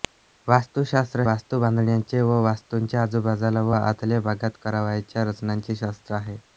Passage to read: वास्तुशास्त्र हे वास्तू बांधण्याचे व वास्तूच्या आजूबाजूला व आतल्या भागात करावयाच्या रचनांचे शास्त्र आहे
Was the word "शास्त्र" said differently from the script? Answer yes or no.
no